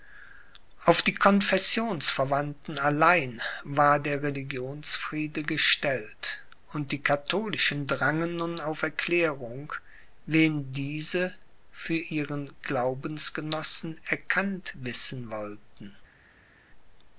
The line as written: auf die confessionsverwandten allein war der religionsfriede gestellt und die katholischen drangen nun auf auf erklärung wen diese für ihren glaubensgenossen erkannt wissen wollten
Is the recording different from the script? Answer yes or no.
yes